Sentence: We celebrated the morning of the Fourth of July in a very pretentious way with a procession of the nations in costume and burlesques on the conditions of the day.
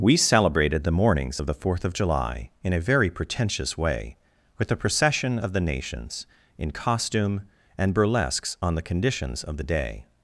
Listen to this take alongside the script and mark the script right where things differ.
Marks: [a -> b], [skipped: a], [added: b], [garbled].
We celebrated the [morning -> mornings] of the Fourth of July in a very pretentious way with a procession of the nations in costume and burlesques on the conditions of the day.